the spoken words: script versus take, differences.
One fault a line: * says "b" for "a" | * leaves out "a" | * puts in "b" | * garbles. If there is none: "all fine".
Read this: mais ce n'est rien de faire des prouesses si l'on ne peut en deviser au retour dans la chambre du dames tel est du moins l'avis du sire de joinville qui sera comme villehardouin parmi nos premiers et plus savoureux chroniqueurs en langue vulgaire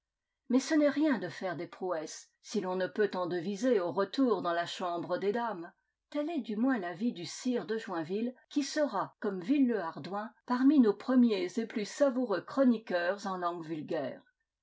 * says "des" for "du"